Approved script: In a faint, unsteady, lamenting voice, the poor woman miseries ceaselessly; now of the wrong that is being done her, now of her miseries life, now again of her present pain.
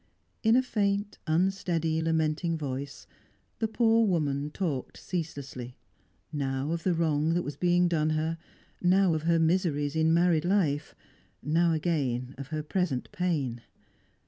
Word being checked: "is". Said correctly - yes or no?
no